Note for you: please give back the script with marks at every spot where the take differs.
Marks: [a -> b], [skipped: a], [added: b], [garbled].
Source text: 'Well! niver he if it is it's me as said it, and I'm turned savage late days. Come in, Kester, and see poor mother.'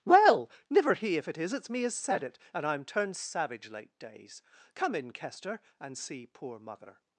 'Well! niver he if it is it's me as said it, and I'm turned savage late days. Come in, Kester, and see poor mother.'